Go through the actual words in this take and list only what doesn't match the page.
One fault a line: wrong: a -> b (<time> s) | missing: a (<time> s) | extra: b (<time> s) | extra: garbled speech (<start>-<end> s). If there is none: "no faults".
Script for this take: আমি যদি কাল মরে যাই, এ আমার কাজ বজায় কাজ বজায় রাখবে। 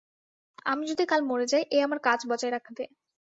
missing: কাজ বজায় (2.5 s)